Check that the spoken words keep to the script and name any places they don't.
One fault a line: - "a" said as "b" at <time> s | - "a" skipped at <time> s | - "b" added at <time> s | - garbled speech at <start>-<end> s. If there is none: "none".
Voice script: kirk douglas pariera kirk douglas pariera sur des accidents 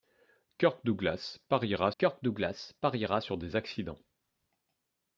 none